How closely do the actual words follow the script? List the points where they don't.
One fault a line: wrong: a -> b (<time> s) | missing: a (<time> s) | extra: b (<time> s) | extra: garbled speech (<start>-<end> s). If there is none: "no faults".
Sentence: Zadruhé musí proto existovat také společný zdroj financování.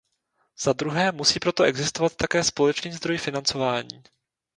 no faults